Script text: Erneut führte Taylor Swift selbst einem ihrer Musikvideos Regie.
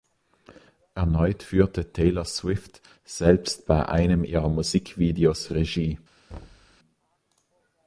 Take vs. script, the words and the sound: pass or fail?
fail